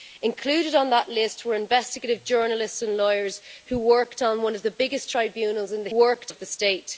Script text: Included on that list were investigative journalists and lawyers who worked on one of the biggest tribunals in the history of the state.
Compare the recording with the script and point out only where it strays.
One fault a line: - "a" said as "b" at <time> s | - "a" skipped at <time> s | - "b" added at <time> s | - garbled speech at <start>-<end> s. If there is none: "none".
- "history" said as "worked" at 5.9 s